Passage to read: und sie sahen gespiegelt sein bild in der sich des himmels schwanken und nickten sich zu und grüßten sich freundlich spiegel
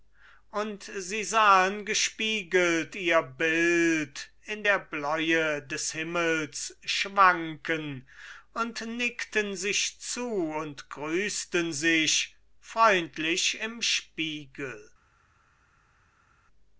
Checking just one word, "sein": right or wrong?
wrong